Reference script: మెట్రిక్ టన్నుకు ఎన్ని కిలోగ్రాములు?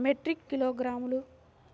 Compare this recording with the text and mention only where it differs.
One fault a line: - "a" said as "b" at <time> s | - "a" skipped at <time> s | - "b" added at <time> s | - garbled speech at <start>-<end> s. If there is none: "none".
- "టన్నుకు ఎన్ని" skipped at 0.5 s